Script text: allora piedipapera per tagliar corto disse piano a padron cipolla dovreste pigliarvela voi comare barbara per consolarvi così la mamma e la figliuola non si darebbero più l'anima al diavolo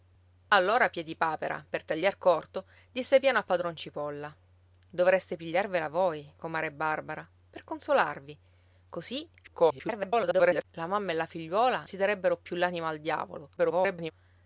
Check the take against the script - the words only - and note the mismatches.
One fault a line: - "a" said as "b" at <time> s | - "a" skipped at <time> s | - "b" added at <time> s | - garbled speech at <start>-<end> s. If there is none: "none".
- garbled speech at 9.4-10.6 s
- "non" skipped at 11.9 s
- garbled speech at 13.6-14.1 s